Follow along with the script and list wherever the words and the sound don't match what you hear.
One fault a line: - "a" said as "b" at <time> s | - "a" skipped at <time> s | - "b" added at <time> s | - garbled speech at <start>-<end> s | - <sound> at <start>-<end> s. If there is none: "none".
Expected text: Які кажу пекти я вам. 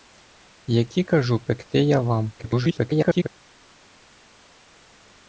- garbled speech at 2.4-3.3 s